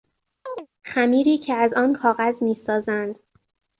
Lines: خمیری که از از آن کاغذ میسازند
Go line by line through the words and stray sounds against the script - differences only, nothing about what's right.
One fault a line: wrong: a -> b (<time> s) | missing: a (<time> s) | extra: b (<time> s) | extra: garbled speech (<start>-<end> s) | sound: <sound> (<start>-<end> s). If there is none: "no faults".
sound: chirp (0.5-0.7 s)
missing: از (1.7 s)